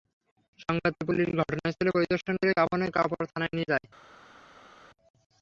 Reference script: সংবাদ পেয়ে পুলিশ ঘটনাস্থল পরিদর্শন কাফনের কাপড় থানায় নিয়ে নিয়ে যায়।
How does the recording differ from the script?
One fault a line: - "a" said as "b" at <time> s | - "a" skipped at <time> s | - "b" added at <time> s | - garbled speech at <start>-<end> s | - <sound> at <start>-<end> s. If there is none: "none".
- "করে" added at 2.4 s
- "নিয়ে" skipped at 3.7 s